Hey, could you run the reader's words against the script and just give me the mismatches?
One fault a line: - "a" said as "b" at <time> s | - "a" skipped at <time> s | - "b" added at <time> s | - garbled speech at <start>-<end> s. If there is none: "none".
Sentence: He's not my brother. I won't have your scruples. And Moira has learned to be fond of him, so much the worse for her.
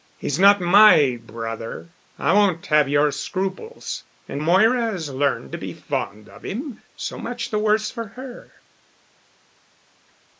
none